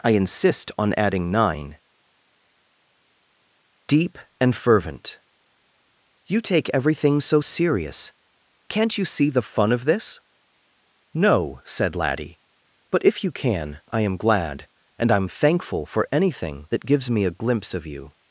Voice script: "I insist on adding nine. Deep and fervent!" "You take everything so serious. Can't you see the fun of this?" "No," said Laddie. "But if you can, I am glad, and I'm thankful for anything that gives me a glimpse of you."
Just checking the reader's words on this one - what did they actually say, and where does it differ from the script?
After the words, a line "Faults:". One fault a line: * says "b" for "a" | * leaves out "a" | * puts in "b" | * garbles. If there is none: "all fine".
"I insist on adding nine. Deep and fervent!" "You take everything so serious. Can't you see the fun of this?" "No," said Laddie. "But if you can, I am glad, and I'm thankful for anything that gives me a glimpse of you."
Faults:
all fine